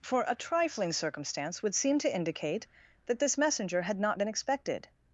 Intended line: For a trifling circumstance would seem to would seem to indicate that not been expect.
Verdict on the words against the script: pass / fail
fail